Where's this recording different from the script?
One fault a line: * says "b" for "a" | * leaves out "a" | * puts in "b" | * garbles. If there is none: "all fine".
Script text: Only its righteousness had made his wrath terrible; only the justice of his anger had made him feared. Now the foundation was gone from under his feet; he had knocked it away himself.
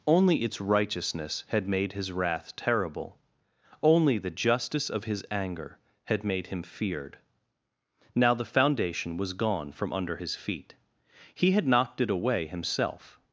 all fine